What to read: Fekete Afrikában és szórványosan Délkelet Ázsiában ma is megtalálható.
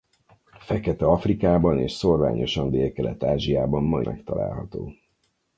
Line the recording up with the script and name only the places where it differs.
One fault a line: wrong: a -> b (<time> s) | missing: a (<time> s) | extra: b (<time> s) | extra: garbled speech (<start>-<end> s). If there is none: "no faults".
missing: is (4.0 s)